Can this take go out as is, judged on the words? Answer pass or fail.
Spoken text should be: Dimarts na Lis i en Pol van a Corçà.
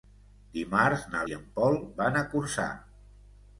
fail